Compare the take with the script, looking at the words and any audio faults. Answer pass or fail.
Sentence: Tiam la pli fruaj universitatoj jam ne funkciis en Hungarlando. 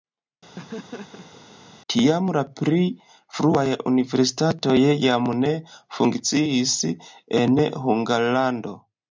fail